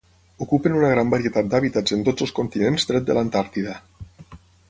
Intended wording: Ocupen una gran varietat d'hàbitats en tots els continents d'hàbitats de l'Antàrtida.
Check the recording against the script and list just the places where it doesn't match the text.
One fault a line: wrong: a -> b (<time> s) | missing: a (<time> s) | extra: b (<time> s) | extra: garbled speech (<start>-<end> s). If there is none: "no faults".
wrong: d'hàbitats -> tret (2.9 s)